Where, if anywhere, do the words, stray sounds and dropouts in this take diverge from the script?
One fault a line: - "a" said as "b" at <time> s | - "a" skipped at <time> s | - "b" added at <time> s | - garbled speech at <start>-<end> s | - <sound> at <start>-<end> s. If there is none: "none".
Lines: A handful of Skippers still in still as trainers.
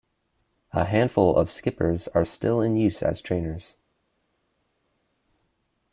- "are" added at 2.1 s
- "still" said as "use" at 2.8 s